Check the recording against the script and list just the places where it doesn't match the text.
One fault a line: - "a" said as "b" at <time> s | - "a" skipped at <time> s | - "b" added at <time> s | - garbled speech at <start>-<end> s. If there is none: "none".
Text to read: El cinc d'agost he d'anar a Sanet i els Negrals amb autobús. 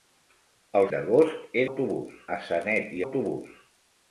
- "cinc" skipped at 0.9 s
- "d'anar" said as "autobús" at 1.6 s
- "els Negrals amb" skipped at 3.0 s